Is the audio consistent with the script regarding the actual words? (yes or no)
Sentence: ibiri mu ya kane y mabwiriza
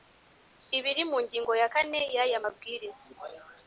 no